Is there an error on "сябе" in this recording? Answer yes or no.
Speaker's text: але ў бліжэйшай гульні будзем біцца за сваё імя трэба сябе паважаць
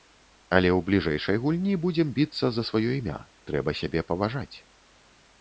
no